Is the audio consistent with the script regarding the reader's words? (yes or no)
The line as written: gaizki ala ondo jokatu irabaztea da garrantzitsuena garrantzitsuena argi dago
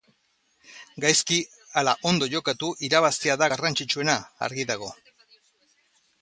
no